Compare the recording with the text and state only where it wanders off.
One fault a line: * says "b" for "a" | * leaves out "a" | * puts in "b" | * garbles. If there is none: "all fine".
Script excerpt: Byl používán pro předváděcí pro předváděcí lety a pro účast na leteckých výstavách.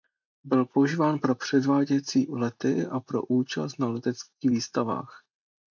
* leaves out "pro předváděcí"